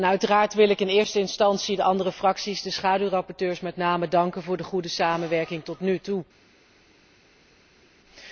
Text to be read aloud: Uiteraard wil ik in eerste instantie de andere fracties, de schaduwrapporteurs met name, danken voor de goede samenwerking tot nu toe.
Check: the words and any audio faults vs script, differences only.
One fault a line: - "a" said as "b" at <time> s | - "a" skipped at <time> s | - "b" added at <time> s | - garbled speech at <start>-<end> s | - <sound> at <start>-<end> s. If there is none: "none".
none